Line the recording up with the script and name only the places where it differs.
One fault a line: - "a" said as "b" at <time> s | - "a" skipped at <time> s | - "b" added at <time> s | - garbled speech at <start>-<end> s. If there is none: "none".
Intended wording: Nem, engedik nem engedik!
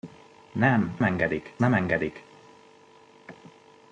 none